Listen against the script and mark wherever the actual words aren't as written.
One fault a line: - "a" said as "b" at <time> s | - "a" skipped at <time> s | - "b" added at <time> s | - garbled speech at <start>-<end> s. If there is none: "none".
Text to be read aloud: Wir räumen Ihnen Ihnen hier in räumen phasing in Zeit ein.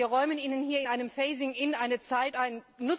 - "Ihnen" skipped at 0.6 s
- "räumen" said as "einem" at 0.8 s
- "eine" added at 1.7 s